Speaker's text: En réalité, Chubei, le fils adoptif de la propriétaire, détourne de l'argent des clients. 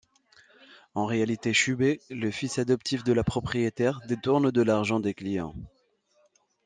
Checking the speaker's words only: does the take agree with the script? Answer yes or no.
yes